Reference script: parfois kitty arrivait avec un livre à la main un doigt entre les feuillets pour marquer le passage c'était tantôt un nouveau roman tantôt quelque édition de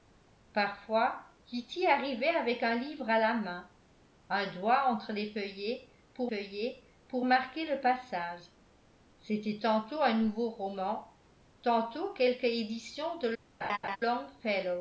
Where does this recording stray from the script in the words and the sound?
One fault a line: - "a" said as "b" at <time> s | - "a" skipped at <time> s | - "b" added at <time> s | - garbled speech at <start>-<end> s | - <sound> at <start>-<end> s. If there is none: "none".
- "feuillets pour" added at 6.3 s
- laugh at 13.6-14.0 s